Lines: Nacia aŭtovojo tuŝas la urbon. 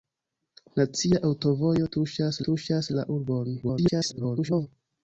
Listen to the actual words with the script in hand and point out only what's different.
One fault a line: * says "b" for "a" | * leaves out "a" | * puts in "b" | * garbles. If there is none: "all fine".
* puts in "tuŝas"
* garbles